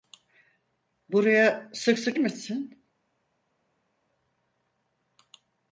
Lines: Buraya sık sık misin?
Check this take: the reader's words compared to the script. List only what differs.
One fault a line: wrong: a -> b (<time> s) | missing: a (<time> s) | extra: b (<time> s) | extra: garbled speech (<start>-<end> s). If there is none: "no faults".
no faults